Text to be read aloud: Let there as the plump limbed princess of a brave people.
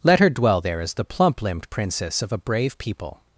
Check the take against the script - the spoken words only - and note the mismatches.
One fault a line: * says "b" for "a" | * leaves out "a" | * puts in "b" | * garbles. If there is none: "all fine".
* puts in "her dwell"